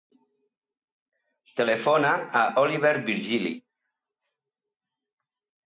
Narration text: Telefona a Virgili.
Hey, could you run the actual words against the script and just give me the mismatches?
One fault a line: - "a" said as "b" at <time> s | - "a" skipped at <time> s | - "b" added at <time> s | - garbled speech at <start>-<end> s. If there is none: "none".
- "l'Oliver" added at 2.5 s